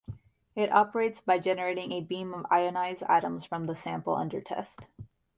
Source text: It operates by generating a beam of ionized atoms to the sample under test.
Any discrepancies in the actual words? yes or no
yes